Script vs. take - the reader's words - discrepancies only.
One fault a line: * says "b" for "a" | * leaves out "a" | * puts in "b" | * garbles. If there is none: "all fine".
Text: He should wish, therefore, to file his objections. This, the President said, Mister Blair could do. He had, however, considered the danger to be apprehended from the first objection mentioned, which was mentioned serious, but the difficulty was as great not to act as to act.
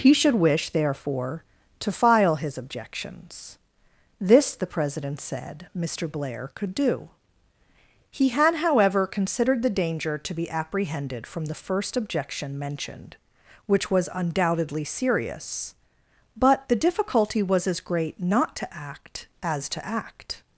* says "undoubtedly" for "mentioned"